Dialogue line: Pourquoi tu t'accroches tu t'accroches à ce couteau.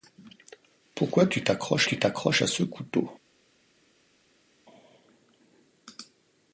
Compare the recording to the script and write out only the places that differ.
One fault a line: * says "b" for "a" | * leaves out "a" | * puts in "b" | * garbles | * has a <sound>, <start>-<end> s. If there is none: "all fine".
all fine